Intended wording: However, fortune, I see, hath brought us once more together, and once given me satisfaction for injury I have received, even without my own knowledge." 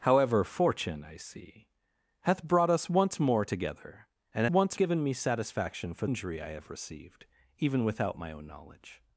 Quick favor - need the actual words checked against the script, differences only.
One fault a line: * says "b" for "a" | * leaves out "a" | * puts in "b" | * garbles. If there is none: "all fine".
all fine